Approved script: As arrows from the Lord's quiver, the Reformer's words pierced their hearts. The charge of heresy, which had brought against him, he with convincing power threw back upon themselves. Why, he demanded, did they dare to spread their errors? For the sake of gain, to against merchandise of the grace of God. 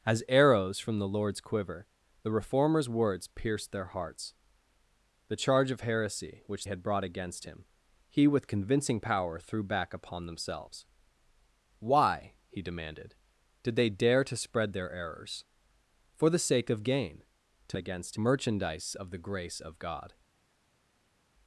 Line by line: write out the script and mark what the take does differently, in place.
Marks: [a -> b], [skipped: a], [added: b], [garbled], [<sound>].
As arrows from the Lord's quiver, the Reformer's words pierced their hearts. The charge of heresy, which had brought against him, he with convincing power threw back upon themselves. Why, he demanded, did they dare to spread their errors? For the sake of gain, to against merchandise of the grace of God.